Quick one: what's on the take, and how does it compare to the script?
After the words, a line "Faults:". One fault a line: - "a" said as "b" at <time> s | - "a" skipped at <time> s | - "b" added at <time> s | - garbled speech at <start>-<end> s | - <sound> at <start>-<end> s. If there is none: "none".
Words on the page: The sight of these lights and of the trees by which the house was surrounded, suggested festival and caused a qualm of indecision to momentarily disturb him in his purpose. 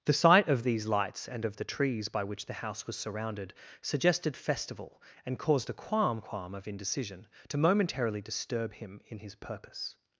The sight of these lights and of the trees by which the house was surrounded, suggested festival and caused a qualm qualm of indecision to momentarily disturb him in his purpose.
Faults:
- "qualm" added at 6.2 s